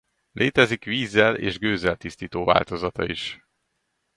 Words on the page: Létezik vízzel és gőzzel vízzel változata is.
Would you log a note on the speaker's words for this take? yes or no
yes